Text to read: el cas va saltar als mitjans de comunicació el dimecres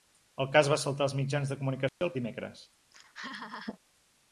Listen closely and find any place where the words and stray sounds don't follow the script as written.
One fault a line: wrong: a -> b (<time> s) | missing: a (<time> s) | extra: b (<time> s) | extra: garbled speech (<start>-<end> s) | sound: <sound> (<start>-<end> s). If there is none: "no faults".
sound: dropout (1.9-2.0 s)
sound: laugh (2.9-3.8 s)